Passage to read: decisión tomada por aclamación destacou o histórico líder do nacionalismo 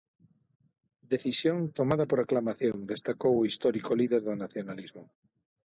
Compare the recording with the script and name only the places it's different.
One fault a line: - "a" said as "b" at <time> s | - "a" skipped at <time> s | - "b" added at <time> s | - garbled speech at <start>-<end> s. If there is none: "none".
none